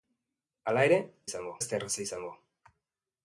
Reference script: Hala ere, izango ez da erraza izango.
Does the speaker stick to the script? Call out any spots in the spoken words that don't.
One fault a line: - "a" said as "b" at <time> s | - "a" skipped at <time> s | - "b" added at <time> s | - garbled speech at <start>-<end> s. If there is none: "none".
none